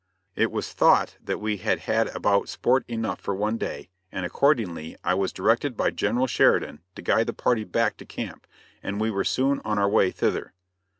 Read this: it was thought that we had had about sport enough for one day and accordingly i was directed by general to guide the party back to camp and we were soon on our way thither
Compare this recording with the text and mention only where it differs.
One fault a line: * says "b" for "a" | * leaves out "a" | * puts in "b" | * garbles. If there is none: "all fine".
* puts in "sheridan"